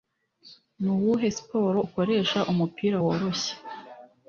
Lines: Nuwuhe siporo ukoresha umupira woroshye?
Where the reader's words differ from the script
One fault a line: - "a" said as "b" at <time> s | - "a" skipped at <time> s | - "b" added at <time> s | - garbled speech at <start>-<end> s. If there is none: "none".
none